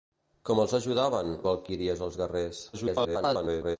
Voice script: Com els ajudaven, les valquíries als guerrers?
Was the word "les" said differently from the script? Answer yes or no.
yes